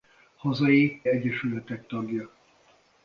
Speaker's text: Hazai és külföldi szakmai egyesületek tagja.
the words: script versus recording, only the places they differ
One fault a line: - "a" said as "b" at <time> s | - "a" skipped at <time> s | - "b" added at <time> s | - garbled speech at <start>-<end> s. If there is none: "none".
- "és külföldi szakmai" skipped at 1.0 s